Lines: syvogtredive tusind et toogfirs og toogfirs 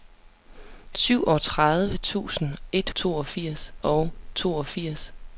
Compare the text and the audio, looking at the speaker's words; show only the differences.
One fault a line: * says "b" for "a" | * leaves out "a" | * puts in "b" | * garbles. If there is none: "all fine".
all fine